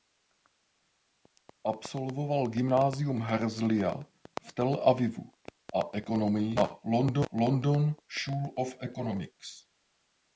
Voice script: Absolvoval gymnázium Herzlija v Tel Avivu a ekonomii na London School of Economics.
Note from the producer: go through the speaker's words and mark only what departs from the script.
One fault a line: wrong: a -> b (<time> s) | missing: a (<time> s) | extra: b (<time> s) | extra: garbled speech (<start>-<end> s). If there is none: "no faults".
no faults